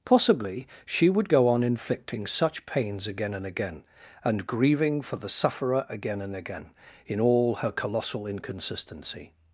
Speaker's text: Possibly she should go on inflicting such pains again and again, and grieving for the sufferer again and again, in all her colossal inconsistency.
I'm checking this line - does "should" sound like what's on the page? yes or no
no